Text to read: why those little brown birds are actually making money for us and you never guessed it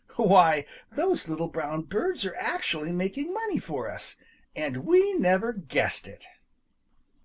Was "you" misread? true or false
true